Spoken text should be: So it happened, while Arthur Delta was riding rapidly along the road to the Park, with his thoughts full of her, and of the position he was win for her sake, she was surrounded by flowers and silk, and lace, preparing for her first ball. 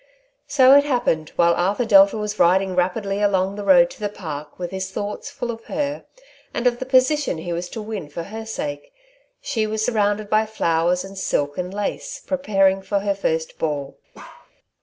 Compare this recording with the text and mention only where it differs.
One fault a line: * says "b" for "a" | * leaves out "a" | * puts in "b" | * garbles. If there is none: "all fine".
* puts in "to"